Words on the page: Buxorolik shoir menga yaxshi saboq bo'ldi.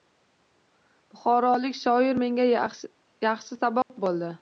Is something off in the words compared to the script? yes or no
no